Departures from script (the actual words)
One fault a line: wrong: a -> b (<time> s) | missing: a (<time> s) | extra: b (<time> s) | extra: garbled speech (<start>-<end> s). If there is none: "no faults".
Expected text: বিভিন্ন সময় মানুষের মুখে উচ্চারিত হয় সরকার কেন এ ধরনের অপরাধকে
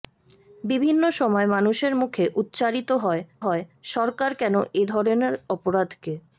extra: হয় (3.4 s)